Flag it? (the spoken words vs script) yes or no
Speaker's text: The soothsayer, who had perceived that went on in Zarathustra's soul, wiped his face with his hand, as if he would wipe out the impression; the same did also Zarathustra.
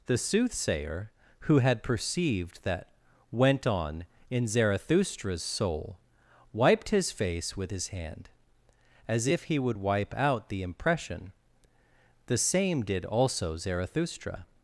no